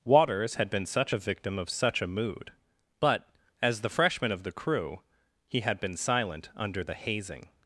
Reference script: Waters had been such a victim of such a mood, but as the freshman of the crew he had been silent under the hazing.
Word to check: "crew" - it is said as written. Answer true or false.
true